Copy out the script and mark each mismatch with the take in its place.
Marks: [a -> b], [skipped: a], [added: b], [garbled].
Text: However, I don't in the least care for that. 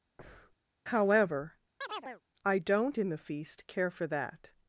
However, I don't in the [least -> feast] care for that.